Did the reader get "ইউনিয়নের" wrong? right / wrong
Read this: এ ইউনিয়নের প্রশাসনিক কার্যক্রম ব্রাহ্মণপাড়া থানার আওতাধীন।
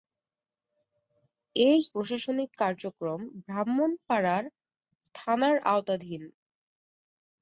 wrong